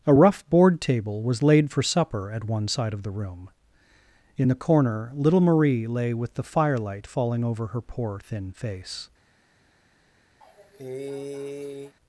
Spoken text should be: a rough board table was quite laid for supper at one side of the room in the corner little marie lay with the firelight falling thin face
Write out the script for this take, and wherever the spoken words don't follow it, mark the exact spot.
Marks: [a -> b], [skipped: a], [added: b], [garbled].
a rough board table was [skipped: quite] laid for supper at one side of the room in the corner little marie lay with the firelight falling [added: over her poor] thin face